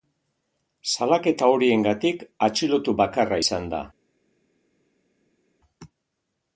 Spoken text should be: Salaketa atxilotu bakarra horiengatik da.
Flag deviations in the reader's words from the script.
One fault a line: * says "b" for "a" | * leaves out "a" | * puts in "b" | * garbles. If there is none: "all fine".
* puts in "horiengatik"
* says "izan" for "horiengatik"